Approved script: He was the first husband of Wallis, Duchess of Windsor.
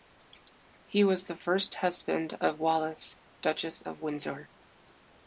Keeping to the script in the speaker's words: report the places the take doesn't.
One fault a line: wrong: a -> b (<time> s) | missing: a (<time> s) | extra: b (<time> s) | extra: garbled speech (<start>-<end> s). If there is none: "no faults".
no faults